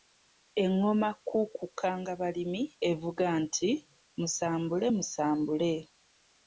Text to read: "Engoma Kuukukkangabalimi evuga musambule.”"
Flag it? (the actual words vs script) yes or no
yes